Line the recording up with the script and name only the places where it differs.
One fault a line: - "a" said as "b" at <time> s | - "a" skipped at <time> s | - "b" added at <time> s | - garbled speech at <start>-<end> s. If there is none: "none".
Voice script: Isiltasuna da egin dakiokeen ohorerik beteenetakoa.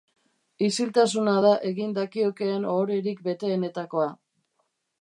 none